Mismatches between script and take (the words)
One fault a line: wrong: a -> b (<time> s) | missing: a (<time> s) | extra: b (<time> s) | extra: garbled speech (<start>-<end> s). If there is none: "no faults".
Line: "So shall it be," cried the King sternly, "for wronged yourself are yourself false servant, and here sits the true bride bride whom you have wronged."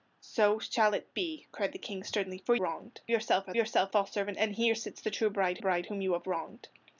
no faults